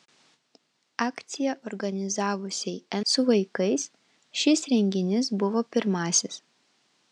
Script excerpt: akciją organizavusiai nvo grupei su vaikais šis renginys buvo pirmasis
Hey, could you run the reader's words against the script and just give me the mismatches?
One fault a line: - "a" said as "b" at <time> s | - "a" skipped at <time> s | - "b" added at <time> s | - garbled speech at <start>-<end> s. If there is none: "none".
- "nvo grupei" skipped at 3.0 s